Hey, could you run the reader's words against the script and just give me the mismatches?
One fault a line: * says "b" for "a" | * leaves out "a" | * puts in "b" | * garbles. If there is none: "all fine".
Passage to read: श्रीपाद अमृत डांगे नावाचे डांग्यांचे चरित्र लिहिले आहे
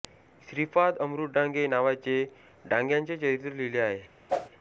all fine